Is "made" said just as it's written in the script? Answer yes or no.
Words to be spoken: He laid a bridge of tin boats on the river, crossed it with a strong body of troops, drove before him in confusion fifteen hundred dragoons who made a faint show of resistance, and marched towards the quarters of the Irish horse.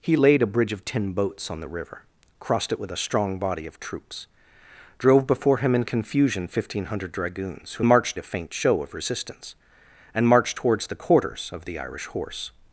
no